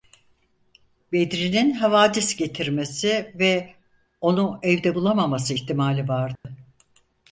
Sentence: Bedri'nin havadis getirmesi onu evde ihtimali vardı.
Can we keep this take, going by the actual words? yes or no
no